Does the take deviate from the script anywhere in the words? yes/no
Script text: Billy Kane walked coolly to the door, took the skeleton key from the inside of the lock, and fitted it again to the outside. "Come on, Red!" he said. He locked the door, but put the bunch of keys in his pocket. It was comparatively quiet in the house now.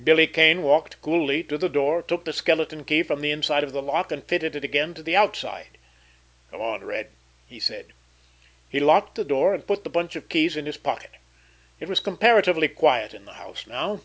yes